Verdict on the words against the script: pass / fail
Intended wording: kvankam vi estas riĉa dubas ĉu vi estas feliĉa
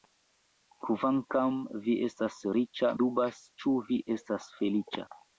pass